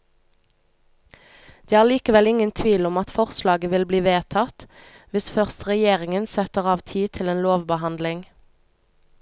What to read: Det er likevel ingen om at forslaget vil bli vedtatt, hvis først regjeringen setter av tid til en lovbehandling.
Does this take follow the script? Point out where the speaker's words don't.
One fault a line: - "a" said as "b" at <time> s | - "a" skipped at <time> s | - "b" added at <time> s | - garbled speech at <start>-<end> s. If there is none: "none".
- "tvil" added at 2.6 s